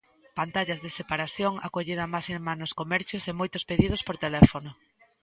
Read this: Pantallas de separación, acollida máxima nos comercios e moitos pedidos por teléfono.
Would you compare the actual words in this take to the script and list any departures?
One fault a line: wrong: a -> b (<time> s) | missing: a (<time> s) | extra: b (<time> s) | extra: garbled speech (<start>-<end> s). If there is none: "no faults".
no faults